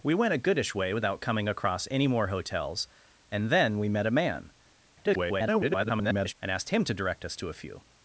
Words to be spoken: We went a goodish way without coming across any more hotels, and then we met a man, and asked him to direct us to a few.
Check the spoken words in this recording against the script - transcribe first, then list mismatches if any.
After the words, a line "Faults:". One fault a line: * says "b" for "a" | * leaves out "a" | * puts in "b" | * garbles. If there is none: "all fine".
We went a goodish way without coming across any more hotels, and then we met a man, [garbled] and asked him to direct us to a few.
Faults:
* garbles